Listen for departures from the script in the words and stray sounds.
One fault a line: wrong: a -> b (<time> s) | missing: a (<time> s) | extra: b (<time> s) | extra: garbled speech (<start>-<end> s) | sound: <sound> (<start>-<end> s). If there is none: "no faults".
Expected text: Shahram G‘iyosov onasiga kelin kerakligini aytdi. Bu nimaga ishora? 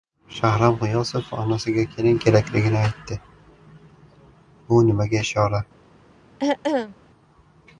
sound: throat clearing (6.4-6.9 s)